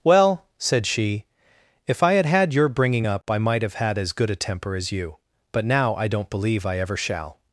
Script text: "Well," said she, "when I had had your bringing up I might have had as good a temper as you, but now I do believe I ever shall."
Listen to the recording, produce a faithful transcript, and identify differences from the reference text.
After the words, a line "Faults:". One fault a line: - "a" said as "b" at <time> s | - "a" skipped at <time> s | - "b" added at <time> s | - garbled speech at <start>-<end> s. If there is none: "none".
"Well," said she, "if I had had your bringing up I might have had as good a temper as you, but now I don't believe I ever shall."
Faults:
- "when" said as "if" at 1.9 s
- "do" said as "don't" at 6.1 s